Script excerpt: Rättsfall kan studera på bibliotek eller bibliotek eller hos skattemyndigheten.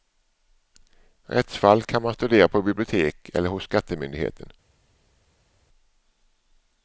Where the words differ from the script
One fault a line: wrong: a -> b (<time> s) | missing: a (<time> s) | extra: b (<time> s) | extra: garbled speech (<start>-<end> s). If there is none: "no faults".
extra: man (2.0 s)
missing: bibliotek eller (3.5 s)